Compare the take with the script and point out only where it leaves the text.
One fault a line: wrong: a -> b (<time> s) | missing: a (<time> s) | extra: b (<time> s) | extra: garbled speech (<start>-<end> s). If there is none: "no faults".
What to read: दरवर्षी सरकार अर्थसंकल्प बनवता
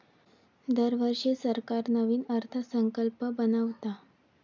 extra: नवीन (1.9 s)